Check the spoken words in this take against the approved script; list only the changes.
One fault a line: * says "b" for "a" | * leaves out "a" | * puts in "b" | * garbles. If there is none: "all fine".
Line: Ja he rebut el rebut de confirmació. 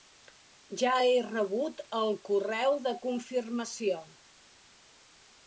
* says "correu" for "rebut"